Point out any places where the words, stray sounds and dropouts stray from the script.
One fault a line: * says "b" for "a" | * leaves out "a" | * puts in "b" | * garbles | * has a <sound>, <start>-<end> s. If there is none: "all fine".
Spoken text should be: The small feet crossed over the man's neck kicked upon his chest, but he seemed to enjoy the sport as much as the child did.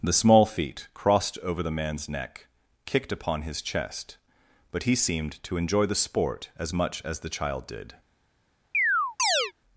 * has a chirp, 8.7-9.5 s